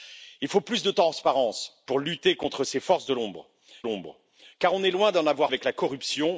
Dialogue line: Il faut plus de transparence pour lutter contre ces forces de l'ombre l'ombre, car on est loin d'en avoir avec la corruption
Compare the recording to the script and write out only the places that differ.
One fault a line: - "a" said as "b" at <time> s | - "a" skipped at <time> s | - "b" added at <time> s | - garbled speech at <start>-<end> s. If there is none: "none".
none